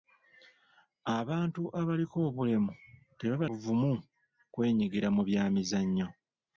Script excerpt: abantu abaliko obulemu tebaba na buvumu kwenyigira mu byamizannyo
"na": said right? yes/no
no